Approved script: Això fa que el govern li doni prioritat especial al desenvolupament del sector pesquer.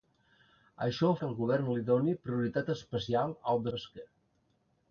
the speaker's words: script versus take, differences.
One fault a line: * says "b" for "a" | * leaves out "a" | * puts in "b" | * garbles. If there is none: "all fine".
* leaves out "fa"
* leaves out "desenvolupament del sector"